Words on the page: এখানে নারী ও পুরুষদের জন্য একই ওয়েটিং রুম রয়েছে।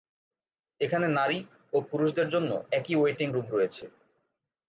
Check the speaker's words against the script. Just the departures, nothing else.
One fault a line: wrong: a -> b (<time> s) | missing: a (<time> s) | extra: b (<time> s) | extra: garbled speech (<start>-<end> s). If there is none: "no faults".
no faults